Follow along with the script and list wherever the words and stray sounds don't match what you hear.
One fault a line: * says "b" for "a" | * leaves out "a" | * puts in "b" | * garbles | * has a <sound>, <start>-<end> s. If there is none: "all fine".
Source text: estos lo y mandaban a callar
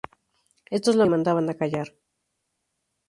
all fine